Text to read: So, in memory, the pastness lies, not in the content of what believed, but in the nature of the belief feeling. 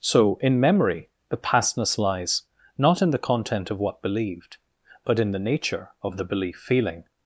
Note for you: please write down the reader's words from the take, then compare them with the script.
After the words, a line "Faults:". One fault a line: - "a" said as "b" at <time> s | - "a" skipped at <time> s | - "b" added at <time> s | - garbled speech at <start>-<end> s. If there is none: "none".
So, in memory, the pastness lies, not in the content of what believed, but in the nature of the belief feeling.
Faults:
none